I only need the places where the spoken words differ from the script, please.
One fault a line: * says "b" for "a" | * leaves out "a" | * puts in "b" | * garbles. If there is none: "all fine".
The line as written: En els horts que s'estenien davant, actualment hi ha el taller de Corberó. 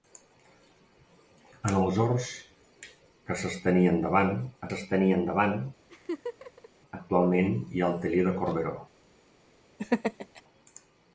* puts in "s'estenien davant"